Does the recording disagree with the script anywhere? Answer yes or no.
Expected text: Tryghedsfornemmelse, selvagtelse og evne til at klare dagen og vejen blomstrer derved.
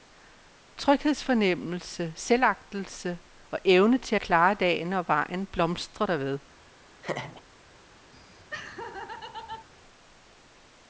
no